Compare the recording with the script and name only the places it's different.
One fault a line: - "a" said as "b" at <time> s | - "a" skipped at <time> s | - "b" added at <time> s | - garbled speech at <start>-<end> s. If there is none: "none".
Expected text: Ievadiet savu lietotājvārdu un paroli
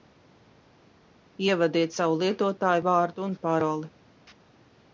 none